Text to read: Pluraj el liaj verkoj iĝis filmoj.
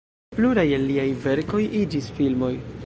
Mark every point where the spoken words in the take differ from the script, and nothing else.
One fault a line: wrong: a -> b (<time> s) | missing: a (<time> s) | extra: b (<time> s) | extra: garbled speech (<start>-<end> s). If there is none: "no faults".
no faults